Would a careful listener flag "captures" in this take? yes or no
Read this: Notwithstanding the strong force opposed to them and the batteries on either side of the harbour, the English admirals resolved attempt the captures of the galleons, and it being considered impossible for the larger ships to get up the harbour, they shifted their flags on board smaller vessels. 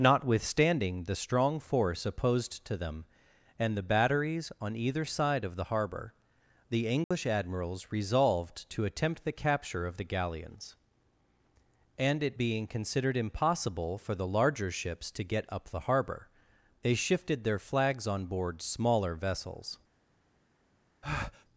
yes